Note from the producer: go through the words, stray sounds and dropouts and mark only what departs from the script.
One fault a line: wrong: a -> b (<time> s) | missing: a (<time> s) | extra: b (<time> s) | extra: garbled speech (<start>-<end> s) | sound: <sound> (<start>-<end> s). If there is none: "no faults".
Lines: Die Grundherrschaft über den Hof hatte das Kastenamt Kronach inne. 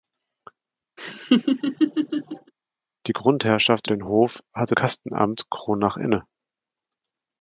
sound: laugh (1.0-2.5 s)
missing: über (3.9 s)
missing: das (4.7 s)